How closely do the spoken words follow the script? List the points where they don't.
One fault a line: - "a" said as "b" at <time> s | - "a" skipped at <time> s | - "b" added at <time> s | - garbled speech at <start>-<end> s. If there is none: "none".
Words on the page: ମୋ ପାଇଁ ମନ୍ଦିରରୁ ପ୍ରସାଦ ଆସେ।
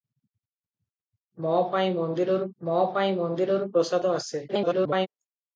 - "ମୋ ପାଇଁ ମନ୍ଦିରରୁ" added at 2.6 s
- garbled speech at 4.5-5.1 s